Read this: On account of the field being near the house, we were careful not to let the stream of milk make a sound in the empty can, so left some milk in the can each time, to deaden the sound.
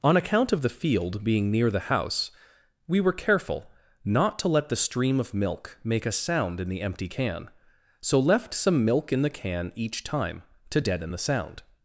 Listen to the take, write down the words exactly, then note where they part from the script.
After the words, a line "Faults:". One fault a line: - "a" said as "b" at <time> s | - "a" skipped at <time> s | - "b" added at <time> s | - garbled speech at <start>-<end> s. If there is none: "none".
On account of the field being near the house, we were careful not to let the stream of milk make a sound in the empty can, so left some milk in the can each time, to deaden the sound.
Faults:
none